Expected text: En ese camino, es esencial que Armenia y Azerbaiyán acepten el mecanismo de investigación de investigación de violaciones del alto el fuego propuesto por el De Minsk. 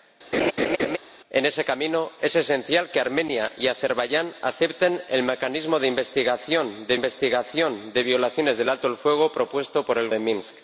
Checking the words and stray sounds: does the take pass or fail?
fail